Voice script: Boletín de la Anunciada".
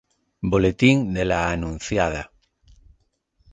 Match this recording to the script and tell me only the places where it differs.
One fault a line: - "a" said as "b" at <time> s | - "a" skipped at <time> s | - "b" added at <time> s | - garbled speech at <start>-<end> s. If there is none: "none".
none